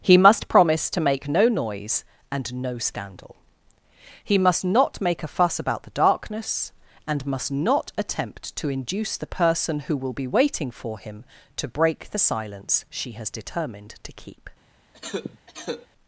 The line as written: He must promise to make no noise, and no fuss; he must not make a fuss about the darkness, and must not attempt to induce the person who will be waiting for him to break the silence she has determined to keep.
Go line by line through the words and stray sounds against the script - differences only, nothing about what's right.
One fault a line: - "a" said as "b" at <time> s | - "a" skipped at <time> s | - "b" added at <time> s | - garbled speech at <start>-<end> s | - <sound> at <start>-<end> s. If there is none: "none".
- "fuss" said as "scandal" at 2.8 s
- cough at 14.9-15.9 s